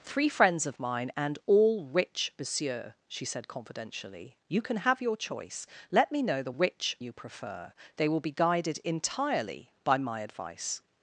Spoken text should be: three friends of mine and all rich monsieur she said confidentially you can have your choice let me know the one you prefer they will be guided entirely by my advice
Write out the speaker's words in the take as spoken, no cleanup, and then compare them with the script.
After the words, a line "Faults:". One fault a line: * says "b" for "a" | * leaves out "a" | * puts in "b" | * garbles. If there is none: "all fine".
three friends of mine and all rich monsieur she said confidentially you can have your choice let me know the rich you prefer they will be guided entirely by my advice
Faults:
* says "rich" for "one"